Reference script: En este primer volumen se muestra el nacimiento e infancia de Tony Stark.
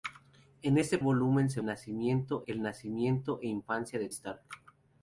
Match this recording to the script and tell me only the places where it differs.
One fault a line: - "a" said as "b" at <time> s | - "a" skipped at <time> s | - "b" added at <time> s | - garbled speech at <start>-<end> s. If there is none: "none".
- "primer" skipped at 1.0 s
- "muestra" said as "nacimiento" at 1.6 s
- "Tony" skipped at 4.1 s